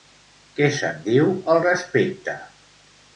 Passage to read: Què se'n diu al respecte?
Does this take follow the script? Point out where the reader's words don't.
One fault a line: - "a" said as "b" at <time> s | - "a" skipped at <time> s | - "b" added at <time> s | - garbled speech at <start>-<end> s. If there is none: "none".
none